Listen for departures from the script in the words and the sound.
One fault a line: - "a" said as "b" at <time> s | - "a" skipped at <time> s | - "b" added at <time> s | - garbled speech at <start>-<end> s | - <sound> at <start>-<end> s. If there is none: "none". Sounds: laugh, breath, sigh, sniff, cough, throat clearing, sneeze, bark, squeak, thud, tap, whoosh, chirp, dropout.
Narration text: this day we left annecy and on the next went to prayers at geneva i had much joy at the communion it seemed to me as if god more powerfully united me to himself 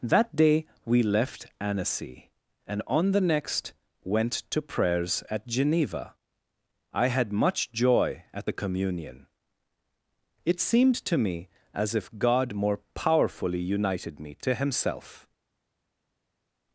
- "this" said as "that" at 0.0 s